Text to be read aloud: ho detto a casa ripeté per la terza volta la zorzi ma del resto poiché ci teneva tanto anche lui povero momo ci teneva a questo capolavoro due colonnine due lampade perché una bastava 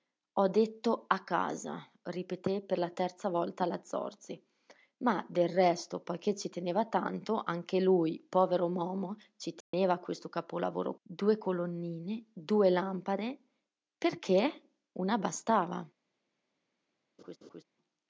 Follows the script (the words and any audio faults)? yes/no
no